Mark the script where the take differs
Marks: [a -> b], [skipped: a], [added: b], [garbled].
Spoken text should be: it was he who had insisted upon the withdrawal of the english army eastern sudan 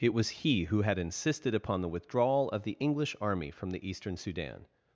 it was he who had insisted upon the withdrawal of the english army [added: from the] eastern sudan